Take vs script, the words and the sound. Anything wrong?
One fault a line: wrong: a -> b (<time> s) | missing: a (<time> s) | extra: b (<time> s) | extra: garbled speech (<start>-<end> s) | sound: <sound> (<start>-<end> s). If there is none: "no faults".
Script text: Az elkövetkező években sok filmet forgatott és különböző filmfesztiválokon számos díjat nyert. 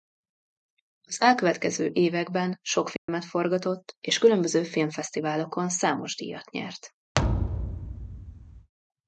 sound: dropout (3.0-3.1 s)
sound: thud (7.1-8.7 s)